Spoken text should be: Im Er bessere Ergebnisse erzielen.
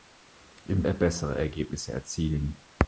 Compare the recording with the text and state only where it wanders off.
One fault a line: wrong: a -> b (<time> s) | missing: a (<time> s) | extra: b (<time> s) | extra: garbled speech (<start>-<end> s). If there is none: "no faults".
no faults